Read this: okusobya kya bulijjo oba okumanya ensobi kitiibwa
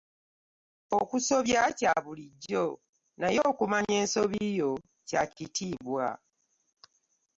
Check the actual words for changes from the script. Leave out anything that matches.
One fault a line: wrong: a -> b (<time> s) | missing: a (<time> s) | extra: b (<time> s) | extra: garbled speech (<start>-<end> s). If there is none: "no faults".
wrong: oba -> naye (3.2 s)
extra: yo kya (4.6 s)